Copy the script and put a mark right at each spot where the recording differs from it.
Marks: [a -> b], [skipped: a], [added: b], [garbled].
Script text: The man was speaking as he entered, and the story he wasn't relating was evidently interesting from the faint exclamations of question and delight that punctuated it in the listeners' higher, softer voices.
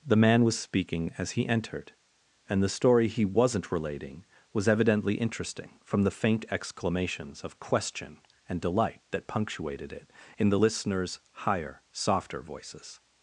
The man was speaking as he entered, and the story he wasn't relating was evidently interesting from the faint exclamations of question and delight that punctuated it in the listeners' higher, softer voices.